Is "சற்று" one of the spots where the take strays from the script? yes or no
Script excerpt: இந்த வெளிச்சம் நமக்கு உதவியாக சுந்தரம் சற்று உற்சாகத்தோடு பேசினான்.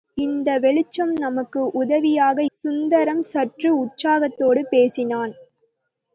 no